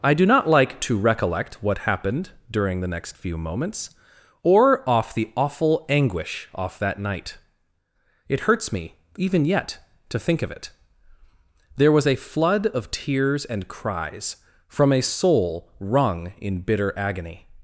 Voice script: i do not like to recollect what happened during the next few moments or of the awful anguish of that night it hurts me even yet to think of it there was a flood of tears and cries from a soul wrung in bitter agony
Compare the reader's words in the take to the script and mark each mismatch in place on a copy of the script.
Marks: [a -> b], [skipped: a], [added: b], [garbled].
i do not like to recollect what happened during the next few moments or [of -> off] the awful anguish [of -> off] that night it hurts me even yet to think of it there was a flood of tears and cries from a soul wrung in bitter agony